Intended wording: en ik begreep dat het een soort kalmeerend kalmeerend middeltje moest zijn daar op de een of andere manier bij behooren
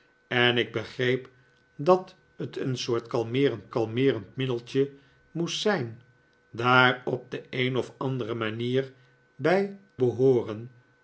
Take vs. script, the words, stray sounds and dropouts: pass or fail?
pass